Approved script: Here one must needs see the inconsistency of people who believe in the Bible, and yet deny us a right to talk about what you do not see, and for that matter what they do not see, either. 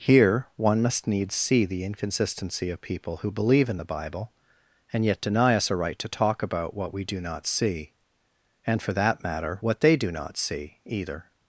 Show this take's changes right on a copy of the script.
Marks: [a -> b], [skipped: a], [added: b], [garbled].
Here one must needs see the inconsistency of people who believe in the Bible, and yet deny us a right to talk about what [you -> we] do not see, and for that matter what they do not see, either.